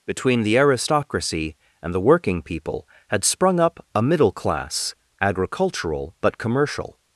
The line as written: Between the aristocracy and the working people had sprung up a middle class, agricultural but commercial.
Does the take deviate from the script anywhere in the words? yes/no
no